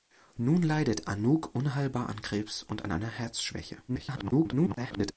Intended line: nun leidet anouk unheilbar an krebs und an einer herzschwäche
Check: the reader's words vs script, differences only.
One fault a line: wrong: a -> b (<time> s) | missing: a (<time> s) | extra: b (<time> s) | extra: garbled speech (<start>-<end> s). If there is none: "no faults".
extra: garbled speech (3.9-5.1 s)